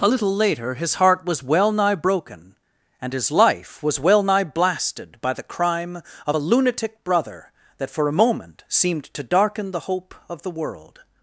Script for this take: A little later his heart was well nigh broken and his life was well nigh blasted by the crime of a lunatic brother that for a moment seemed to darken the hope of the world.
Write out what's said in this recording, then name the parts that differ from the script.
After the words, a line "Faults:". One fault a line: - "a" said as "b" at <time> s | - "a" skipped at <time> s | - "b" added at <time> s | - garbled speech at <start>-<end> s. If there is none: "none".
A little later his heart was well nigh broken and his life was well nigh blasted by the crime of a lunatic brother that for a moment seemed to darken the hope of the world.
Faults:
none